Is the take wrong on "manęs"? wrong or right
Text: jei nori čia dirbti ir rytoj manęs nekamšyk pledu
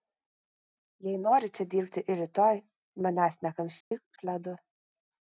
right